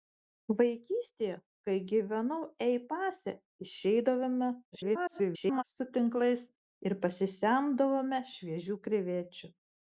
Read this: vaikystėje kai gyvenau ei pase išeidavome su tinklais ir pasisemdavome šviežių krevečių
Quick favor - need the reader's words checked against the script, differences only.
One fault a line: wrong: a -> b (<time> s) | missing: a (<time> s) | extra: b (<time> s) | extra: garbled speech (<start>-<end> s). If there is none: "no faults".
extra: garbled speech (4.7-5.6 s)